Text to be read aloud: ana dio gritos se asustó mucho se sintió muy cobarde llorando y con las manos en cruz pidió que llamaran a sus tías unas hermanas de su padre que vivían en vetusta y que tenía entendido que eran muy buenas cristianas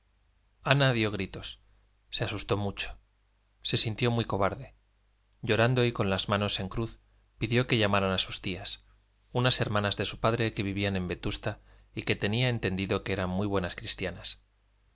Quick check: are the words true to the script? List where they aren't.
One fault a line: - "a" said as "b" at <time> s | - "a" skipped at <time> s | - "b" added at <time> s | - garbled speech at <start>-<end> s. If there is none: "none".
none